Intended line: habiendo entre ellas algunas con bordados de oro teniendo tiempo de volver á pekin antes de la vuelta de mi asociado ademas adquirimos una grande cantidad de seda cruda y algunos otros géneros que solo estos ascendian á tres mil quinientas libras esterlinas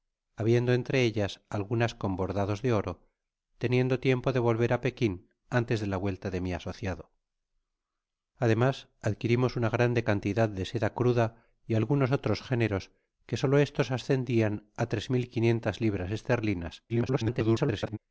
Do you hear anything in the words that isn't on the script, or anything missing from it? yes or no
yes